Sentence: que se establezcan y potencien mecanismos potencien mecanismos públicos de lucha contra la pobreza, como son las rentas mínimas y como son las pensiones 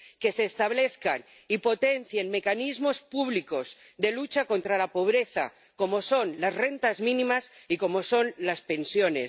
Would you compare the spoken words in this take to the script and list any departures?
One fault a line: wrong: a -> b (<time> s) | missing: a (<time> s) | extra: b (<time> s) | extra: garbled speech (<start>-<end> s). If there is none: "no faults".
missing: potencien mecanismos (3.0 s)